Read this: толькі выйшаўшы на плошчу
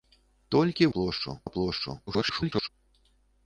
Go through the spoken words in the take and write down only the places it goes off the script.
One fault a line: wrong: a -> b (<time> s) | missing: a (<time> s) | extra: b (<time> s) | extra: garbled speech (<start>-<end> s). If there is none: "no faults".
wrong: выйшаўшы -> плошчу (1.0 s)
extra: garbled speech (2.1-2.7 s)